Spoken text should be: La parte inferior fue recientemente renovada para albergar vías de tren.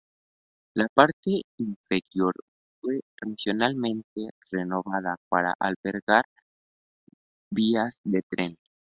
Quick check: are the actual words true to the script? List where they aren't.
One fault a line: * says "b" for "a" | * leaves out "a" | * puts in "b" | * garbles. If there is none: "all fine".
all fine